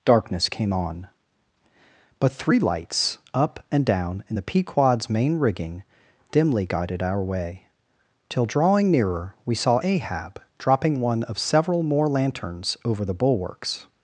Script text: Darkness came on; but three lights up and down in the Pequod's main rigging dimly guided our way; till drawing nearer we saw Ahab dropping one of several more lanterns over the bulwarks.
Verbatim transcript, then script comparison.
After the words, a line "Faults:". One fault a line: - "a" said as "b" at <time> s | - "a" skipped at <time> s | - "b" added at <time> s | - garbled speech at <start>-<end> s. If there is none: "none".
Darkness came on; but three lights up and down in the Pequod's main rigging dimly guided our way; till drawing nearer we saw Ahab dropping one of several more lanterns over the bulwarks.
Faults:
none